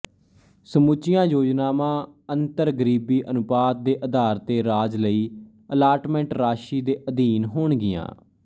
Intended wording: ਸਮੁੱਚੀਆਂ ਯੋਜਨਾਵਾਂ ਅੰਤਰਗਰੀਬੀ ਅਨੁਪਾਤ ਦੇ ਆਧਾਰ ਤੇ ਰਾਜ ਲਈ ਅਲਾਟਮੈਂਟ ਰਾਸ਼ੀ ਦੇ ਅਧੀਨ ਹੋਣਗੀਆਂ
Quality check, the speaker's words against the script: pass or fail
pass